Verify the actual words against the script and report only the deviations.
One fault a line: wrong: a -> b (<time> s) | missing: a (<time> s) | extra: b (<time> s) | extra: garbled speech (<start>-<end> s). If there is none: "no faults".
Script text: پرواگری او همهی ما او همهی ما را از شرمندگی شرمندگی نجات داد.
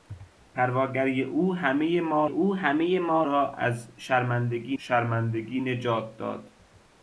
no faults